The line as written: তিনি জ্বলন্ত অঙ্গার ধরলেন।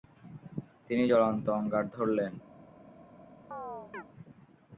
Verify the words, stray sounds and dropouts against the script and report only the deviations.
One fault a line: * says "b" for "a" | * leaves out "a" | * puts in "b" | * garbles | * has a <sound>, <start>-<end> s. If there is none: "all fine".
* has a chirp, 3.5-4.0 s